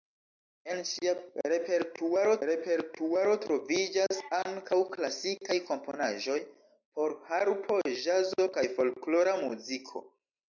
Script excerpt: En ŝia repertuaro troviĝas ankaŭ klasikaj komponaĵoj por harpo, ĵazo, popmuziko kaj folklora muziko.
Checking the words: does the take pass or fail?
fail